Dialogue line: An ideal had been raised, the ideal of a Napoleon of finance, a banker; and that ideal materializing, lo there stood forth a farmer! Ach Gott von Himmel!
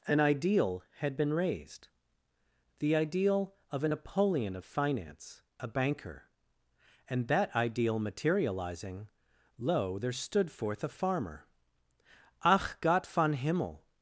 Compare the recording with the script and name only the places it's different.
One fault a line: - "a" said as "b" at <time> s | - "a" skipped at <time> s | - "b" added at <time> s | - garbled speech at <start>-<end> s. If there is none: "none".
none